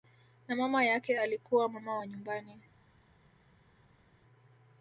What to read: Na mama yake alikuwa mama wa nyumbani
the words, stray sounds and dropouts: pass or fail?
pass